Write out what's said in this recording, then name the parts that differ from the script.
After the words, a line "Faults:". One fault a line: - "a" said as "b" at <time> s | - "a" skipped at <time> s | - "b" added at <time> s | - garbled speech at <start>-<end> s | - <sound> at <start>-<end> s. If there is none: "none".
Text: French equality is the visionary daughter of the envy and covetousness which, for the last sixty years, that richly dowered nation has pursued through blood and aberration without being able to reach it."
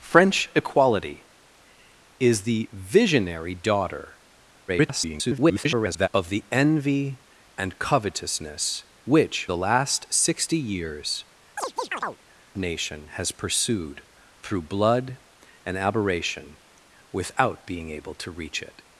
French equality is the visionary daughter [garbled] of the envy and covetousness which, the last sixty years, nation has pursued through blood and aberration without being able to reach it."
Faults:
- garbled speech at 4.7-6.1 s
- "for" skipped at 9.5 s
- "that richly dowered" skipped at 11.2 s
- chirp at 11.6-12.2 s